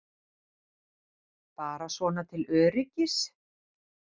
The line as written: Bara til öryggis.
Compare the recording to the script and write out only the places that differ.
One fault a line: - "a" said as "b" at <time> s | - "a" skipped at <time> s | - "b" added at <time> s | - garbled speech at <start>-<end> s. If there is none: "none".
- "svona" added at 2.0 s